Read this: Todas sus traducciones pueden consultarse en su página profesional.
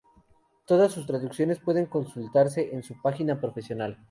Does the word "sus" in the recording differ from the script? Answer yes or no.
no